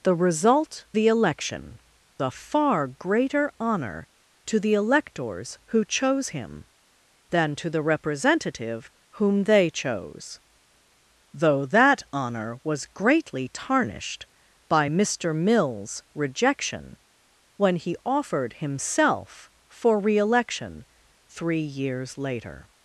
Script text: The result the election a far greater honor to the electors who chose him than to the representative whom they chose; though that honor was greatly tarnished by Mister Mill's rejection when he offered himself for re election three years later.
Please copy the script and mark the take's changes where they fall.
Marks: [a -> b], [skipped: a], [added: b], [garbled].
The result the election a far greater honor to the electors who chose him than to the representative whom they chose; though that honor was greatly tarnished by Mister Mill's rejection when he offered himself for re election three years later.